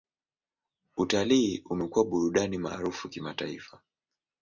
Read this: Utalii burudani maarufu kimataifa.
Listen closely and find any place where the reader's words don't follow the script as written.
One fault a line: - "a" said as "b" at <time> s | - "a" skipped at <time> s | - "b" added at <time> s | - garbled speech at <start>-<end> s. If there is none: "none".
- "umekuwa" added at 1.7 s